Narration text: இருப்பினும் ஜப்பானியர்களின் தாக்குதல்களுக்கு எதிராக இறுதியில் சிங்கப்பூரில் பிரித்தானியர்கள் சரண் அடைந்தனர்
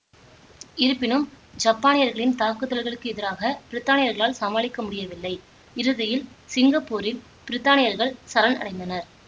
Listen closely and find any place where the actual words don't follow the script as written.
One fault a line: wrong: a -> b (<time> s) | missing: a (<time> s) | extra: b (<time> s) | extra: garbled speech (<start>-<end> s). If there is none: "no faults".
extra: பிரித்தானியர்களால் சமாளிக்க முடியவில்லை (3.7 s)